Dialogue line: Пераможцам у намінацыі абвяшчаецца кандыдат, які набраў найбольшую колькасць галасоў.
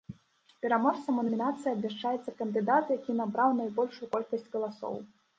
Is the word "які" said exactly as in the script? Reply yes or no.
yes